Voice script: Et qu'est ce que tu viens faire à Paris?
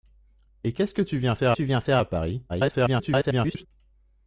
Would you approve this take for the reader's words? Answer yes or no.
no